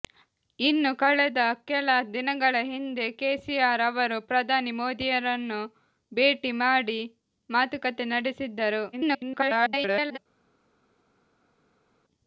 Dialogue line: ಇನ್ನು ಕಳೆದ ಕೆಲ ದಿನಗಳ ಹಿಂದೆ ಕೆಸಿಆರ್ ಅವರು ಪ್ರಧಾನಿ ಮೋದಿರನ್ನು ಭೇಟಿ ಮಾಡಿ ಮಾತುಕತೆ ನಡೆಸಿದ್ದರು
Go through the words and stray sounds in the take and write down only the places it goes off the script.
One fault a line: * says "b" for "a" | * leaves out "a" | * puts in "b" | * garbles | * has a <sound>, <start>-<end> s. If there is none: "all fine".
* garbles